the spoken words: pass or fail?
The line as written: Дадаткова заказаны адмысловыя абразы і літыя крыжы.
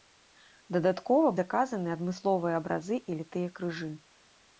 pass